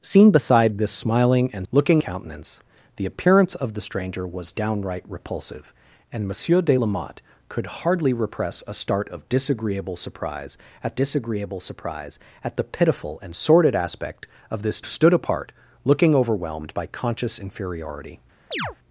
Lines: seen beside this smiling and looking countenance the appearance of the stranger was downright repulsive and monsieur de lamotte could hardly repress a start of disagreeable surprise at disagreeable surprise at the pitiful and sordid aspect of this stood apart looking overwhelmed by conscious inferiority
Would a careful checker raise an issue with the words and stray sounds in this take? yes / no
yes